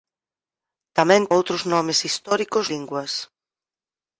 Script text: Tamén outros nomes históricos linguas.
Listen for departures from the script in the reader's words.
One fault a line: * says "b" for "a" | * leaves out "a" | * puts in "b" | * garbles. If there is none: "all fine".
all fine